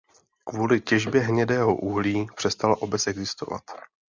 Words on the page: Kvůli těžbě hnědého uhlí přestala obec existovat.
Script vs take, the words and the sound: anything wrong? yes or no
no